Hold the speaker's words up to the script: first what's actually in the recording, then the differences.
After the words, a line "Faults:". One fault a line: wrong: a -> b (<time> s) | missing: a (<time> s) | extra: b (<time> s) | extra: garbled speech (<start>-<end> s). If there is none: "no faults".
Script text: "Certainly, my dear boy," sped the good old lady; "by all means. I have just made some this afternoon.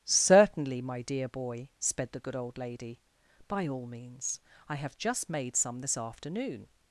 "Certainly, my dear boy," sped the good old lady; "by all means. I have just made some this afternoon.
Faults:
no faults